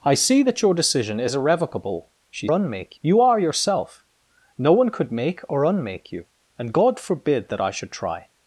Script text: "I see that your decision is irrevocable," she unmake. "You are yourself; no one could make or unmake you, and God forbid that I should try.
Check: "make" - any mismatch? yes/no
no